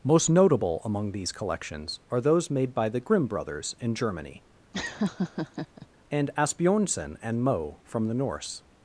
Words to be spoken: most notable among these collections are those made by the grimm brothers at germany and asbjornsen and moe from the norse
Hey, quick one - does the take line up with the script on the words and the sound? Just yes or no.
no